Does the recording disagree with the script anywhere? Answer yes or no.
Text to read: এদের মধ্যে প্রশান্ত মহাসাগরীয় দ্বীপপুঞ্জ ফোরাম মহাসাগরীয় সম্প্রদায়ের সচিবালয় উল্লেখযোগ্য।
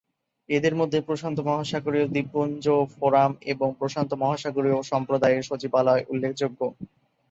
yes